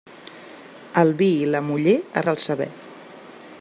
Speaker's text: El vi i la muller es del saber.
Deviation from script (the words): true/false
false